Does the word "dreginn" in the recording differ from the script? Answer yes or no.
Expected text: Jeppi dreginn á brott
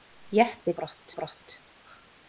yes